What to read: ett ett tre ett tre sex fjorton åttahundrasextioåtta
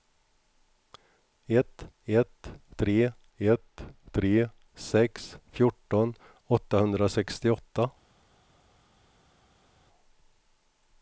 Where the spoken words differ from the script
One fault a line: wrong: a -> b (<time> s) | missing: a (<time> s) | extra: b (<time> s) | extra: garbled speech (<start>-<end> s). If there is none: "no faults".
no faults